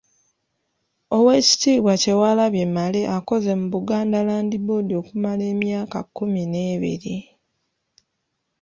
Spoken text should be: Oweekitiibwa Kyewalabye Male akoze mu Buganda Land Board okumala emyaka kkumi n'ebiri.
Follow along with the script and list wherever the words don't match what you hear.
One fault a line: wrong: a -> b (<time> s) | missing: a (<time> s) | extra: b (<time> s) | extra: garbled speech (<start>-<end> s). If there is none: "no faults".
no faults